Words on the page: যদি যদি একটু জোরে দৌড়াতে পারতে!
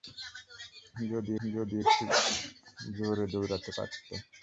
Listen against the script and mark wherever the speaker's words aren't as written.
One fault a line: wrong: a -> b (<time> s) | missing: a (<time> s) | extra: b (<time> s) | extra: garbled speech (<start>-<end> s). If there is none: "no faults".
no faults